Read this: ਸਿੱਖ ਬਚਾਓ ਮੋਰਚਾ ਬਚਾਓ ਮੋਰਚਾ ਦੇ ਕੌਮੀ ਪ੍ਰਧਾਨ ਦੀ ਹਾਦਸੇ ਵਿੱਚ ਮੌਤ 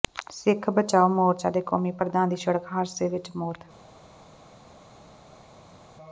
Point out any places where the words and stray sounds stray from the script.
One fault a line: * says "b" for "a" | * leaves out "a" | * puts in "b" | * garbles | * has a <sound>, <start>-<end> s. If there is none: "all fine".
* leaves out "ਬਚਾਓ ਮੋਰਚਾ"
* puts in "ਸੜਕ"